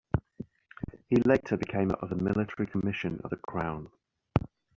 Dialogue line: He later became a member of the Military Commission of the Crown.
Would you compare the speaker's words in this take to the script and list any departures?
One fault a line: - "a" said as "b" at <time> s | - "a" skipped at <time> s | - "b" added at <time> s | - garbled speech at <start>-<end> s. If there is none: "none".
- "member" skipped at 1.9 s